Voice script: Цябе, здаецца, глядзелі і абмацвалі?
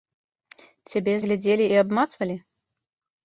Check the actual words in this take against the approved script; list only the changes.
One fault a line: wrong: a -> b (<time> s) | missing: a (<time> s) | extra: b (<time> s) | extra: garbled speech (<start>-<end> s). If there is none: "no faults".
missing: здаецца (1.1 s)